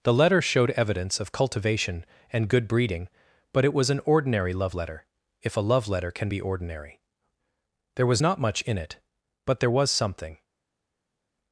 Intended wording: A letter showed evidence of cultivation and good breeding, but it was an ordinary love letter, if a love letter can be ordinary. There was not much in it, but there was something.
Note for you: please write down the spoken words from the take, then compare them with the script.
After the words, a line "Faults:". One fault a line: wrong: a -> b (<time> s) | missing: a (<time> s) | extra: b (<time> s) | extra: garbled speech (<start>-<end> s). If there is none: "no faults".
The letter showed evidence of cultivation and good breeding, but it was an ordinary love letter, if a love letter can be ordinary. There was not much in it, but there was something.
Faults:
wrong: A -> The (0.0 s)